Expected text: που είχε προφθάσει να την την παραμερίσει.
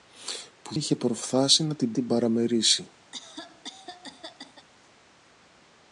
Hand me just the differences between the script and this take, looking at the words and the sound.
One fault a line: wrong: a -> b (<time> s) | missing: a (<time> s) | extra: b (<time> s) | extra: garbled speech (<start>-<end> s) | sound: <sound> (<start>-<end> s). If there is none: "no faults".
sound: cough (3.1-4.7 s)